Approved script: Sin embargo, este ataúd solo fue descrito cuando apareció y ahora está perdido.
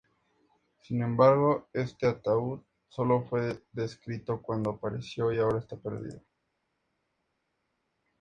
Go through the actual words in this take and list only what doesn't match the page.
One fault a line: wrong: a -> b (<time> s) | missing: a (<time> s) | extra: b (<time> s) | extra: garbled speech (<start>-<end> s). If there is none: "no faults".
no faults